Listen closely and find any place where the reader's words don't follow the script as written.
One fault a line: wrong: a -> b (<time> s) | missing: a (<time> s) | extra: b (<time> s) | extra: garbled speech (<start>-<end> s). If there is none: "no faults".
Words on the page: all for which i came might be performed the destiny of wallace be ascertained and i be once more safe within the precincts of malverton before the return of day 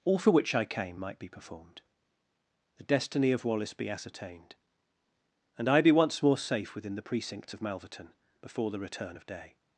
no faults